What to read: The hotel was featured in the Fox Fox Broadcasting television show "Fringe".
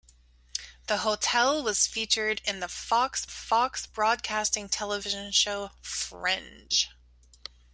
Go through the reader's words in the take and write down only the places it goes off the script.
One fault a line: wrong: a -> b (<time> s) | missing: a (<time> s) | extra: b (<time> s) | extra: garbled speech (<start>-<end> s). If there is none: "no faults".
no faults